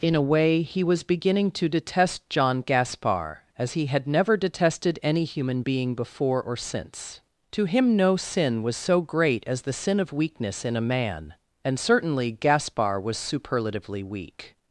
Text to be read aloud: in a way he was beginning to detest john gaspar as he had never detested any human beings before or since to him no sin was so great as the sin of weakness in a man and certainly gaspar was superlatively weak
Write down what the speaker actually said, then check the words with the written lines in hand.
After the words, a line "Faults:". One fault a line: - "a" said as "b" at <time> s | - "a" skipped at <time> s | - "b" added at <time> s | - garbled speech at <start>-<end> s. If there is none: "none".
in a way he was beginning to detest john gaspar as he had never detested any human being before or since to him no sin was so great as the sin of weakness in a man and certainly gaspar was superlatively weak
Faults:
- "beings" said as "being" at 5.6 s